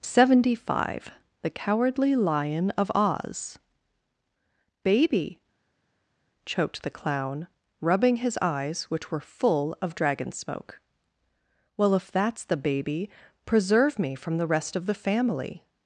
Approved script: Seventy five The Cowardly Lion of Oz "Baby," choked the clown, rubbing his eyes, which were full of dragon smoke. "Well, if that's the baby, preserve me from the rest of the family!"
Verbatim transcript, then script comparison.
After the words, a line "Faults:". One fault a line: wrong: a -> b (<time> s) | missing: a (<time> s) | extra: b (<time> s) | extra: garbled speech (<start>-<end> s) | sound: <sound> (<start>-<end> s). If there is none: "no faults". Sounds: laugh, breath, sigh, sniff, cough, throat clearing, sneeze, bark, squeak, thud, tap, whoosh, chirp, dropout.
Seventy five The Cowardly Lion of Oz "Baby," choked the clown, rubbing his eyes, which were full of dragon smoke. "Well, if that's the baby, preserve me from the rest of the family!"
Faults:
no faults